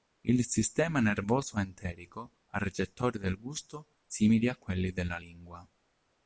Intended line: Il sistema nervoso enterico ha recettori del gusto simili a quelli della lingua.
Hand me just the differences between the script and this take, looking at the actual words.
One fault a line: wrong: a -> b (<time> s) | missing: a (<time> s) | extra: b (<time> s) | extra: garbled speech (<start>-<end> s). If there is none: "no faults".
no faults